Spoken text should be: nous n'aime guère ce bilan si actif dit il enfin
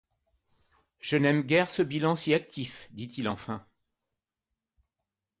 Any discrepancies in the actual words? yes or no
yes